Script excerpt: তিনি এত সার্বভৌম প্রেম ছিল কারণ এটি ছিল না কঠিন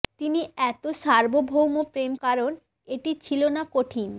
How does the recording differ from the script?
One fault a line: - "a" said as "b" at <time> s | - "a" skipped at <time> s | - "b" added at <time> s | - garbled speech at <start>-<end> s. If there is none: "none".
- "ছিল" skipped at 2.1 s